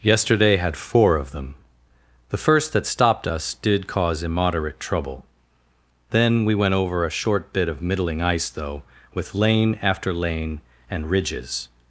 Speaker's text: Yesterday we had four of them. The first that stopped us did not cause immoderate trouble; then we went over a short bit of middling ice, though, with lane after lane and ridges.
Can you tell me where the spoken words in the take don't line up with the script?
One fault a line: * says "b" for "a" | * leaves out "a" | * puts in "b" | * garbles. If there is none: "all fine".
* leaves out "we"
* leaves out "not"